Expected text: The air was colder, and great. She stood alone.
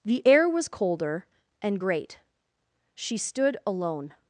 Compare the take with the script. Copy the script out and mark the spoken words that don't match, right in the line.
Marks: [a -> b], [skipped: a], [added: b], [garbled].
The air was colder, and great. She stood alone.